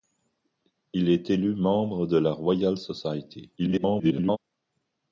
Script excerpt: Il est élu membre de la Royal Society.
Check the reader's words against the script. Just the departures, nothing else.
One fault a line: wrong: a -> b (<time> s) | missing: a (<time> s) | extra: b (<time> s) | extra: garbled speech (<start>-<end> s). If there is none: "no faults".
extra: garbled speech (3.6-4.4 s)